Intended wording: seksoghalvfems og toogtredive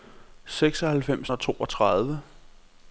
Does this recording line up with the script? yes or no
yes